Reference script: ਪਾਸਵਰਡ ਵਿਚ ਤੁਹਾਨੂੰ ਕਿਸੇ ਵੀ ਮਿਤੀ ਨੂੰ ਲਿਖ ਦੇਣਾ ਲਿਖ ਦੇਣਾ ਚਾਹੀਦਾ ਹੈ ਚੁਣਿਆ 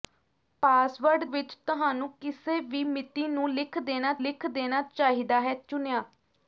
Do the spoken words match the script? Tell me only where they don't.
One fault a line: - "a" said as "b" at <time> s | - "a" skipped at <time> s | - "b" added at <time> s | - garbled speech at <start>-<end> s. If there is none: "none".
none